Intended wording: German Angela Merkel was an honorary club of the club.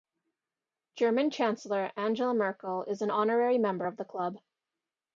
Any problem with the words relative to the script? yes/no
yes